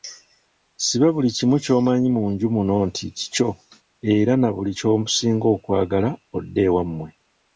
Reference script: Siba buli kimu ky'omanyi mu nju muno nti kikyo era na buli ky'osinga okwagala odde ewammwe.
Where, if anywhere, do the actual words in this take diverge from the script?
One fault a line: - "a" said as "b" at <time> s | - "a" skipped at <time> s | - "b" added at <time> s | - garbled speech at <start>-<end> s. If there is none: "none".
none